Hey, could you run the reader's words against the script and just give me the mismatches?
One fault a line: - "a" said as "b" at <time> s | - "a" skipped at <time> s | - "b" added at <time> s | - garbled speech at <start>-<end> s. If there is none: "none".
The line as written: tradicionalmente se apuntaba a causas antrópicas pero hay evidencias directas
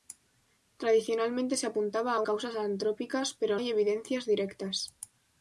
none